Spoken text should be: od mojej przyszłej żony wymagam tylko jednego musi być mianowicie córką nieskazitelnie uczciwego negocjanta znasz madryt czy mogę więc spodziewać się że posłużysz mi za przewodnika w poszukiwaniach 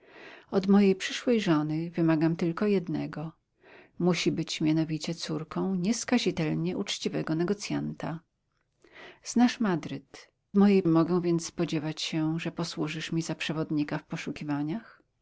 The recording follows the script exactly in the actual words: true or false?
false